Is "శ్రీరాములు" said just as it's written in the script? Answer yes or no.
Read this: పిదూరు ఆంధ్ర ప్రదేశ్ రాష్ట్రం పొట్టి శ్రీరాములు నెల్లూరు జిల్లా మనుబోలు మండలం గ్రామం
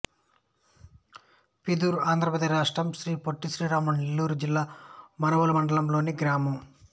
yes